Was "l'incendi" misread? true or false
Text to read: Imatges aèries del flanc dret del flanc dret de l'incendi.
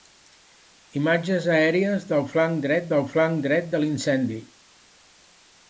false